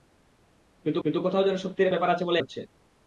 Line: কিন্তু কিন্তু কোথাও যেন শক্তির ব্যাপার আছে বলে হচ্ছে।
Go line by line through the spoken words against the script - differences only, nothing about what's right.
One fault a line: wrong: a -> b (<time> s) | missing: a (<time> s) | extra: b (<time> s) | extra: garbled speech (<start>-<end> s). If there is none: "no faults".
no faults